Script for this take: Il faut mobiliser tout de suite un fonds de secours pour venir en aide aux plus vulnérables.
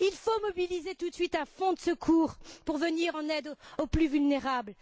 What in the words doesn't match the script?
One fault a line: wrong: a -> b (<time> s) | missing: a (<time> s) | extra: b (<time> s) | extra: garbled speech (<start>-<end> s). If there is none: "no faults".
no faults